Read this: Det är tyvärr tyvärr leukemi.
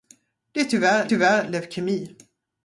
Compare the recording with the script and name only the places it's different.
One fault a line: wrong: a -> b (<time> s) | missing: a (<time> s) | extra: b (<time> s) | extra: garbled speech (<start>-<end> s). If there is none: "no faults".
no faults